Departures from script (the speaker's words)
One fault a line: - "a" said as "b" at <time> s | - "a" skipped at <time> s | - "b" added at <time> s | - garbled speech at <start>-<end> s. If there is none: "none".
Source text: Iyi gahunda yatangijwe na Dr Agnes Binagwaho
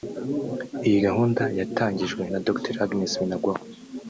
none